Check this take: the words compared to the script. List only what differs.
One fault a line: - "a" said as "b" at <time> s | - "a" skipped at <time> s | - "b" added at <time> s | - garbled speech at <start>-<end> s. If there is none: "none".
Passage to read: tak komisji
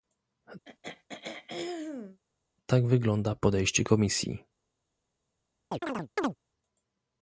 - "wygląda podejście" added at 2.9 s